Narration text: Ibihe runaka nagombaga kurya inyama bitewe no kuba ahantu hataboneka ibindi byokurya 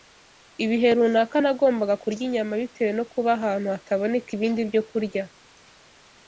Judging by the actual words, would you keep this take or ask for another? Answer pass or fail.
pass